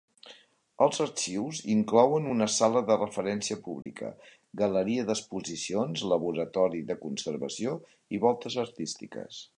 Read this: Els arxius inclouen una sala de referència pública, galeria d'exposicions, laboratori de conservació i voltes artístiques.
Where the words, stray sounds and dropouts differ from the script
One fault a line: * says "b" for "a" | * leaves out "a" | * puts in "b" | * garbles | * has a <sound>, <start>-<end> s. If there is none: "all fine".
* has a dropout, 3.8-3.9 s